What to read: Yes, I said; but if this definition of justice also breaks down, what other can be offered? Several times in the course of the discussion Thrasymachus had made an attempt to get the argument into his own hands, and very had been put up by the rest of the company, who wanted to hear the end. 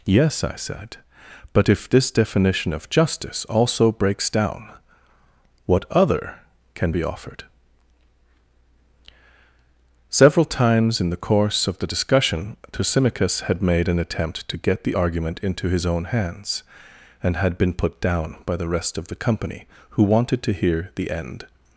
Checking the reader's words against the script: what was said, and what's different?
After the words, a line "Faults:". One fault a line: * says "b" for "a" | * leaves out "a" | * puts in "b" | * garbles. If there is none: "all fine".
Yes, I said; but if this definition of justice also breaks down, what other can be offered? Several times in the course of the discussion Thrasymachus had made an attempt to get the argument into his own hands, and had been put down by the rest of the company, who wanted to hear the end.
Faults:
* leaves out "very"
* says "down" for "up"